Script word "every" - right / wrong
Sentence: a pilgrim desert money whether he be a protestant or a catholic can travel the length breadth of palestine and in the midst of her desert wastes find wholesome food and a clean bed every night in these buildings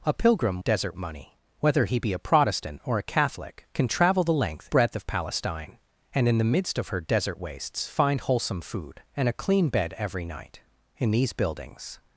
right